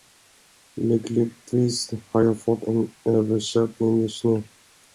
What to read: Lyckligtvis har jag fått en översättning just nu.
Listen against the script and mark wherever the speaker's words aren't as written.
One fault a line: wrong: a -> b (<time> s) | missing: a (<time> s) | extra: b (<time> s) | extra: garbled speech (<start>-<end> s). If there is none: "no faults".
no faults